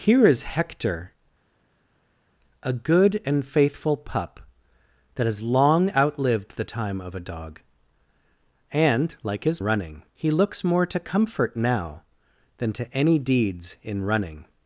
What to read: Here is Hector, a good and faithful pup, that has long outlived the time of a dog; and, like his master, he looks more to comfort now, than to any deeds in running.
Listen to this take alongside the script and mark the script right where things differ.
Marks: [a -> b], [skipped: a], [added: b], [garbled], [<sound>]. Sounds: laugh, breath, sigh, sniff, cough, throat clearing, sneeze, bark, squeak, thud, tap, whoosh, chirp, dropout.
Here is Hector, a good and faithful pup, that has long outlived the time of a dog; and, like his [master, -> running] he looks more to comfort now, than to any deeds in running.